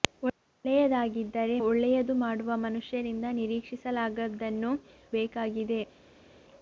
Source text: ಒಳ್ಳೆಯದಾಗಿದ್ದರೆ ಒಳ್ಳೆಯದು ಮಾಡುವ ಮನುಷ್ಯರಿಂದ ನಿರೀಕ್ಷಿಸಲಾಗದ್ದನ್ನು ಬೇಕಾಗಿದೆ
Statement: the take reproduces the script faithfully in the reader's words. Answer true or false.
true